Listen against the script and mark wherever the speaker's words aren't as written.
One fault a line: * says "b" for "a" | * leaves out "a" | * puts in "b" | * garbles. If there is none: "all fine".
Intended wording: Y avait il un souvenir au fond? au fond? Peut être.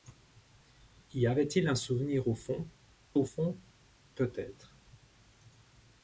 all fine